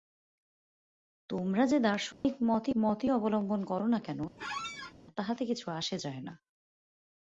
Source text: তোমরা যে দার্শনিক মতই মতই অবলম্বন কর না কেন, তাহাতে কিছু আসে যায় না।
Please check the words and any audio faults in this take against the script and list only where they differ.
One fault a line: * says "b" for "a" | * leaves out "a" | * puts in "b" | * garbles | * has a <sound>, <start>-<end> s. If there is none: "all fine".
* has a dropout, 2.1-2.2 s
* has a squeak, 4.4-4.9 s